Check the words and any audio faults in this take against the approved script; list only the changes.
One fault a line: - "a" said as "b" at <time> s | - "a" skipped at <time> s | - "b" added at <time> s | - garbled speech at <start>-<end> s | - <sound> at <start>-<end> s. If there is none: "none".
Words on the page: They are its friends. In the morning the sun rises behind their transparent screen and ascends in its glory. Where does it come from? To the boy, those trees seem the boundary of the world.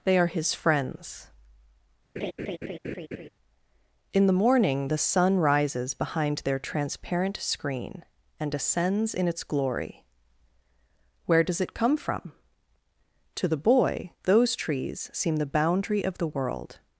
- "its" said as "his" at 0.3 s
- laugh at 2.2-3.3 s